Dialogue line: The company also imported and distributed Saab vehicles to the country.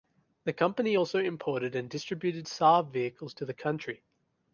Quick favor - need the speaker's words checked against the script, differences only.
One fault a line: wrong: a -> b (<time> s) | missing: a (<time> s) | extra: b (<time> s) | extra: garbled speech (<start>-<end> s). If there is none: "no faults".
no faults